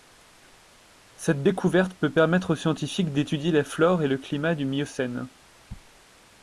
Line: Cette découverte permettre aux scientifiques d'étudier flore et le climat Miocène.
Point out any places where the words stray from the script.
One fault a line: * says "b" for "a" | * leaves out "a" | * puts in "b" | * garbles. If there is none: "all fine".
* puts in "peut"
* puts in "la"
* puts in "du"